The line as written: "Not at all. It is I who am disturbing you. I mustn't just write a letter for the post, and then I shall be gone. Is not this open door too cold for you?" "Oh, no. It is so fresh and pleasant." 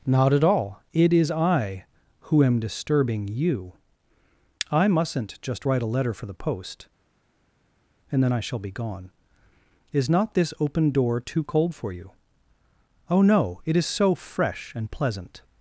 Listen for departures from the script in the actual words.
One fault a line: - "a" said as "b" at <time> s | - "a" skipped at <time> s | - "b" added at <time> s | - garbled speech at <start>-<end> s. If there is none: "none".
none